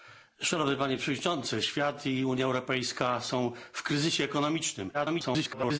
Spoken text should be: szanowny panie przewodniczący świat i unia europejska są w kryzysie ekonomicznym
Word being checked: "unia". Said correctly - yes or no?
yes